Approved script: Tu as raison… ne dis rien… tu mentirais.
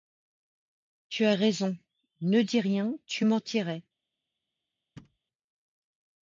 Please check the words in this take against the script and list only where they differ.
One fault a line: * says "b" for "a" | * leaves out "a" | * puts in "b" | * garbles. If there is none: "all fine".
all fine